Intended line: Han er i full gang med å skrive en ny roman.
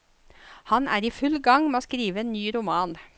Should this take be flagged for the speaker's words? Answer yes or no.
no